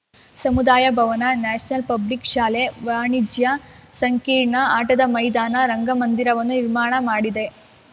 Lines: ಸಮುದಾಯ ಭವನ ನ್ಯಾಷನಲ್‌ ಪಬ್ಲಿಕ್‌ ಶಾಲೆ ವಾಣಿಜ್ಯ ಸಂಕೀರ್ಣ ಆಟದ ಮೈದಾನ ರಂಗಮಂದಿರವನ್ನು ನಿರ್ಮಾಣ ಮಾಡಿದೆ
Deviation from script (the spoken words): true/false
false